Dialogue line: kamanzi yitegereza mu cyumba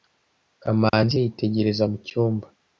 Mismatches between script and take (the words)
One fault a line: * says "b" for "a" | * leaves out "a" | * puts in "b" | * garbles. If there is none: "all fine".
all fine